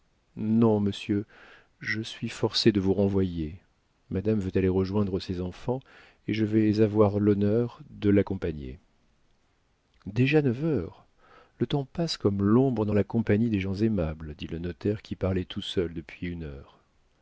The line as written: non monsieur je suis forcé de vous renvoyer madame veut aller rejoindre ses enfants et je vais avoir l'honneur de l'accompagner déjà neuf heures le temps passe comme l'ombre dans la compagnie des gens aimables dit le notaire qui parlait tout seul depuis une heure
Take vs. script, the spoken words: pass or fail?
pass